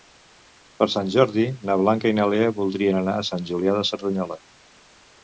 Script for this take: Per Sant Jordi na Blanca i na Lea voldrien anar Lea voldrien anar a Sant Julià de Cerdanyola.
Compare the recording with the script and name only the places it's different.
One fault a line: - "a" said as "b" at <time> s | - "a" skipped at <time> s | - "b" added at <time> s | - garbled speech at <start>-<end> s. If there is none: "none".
- "Lea voldrien anar" skipped at 3.1 s